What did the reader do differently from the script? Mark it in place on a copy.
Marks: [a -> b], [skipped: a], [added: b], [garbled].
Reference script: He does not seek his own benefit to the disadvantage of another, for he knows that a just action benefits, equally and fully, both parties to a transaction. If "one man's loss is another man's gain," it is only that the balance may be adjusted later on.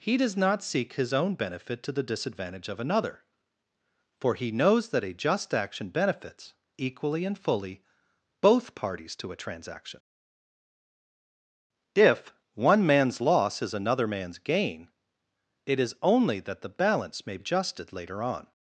He does not seek his own benefit to the disadvantage of another, for he knows that a just action benefits, equally and fully, both parties to a transaction. If "one man's loss is another man's gain," it is only that the balance may [skipped: be] adjusted later on.